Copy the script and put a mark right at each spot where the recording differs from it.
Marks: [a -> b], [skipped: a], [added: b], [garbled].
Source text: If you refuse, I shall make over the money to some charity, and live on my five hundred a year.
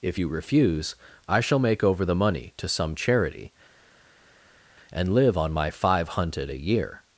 If you refuse, I shall make over the money to some charity, and live on my five [hundred -> hunted] a year.